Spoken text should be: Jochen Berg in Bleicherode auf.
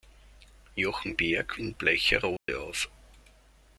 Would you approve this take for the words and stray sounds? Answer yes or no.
no